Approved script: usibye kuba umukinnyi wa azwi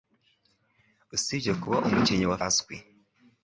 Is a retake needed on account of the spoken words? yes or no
no